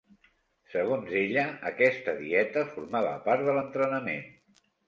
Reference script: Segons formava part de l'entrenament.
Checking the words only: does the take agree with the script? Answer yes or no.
no